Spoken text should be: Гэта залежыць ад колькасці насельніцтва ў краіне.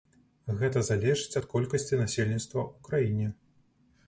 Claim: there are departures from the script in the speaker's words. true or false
false